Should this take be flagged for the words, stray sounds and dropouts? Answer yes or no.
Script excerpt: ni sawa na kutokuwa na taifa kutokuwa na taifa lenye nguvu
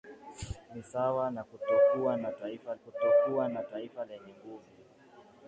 no